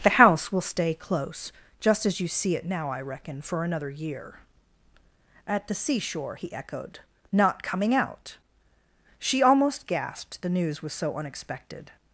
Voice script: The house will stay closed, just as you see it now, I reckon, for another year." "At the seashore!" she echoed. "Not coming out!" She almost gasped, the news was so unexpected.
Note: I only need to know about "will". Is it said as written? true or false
true